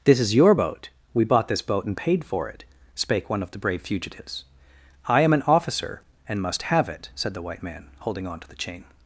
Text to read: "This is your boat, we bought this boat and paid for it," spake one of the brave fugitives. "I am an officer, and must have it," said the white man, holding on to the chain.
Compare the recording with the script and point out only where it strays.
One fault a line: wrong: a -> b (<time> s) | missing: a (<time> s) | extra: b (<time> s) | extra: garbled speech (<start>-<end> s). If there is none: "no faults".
no faults